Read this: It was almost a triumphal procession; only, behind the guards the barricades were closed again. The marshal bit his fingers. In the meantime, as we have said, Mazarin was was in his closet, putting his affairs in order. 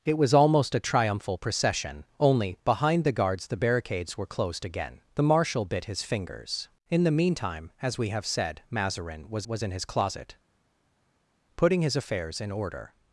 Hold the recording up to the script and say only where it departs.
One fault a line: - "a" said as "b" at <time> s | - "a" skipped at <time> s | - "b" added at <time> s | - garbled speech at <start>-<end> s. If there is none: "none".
none